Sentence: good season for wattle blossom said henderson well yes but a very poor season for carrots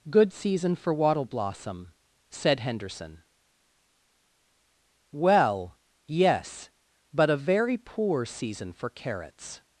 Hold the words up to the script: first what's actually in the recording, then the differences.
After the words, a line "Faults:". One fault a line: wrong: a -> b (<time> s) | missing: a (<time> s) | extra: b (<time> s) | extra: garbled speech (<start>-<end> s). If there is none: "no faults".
good season for wattle blossom said henderson well yes but a very poor season for carrots
Faults:
no faults